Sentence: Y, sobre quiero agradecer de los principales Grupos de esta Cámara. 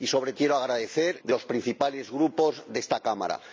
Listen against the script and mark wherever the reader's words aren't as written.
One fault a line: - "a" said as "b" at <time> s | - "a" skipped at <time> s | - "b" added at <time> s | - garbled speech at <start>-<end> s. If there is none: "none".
none